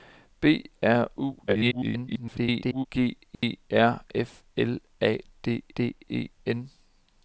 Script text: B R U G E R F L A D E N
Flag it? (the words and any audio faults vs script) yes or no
yes